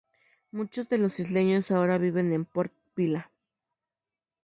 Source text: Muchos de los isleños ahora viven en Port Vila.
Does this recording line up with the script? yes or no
yes